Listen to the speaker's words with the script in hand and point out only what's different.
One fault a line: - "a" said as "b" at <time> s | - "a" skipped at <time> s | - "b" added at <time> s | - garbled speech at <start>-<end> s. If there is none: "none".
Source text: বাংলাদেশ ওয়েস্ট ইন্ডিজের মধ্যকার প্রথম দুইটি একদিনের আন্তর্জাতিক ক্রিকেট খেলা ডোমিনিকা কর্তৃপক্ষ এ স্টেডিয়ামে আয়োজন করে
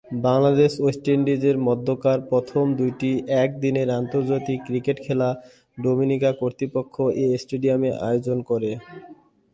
none